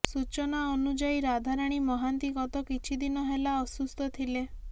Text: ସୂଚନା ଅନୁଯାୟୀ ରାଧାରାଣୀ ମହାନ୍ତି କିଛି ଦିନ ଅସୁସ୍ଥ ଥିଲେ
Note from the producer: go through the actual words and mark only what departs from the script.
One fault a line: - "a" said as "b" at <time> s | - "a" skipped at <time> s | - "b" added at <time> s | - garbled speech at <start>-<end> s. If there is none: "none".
- "ଗତ" added at 2.4 s
- "ହେଲା" added at 3.3 s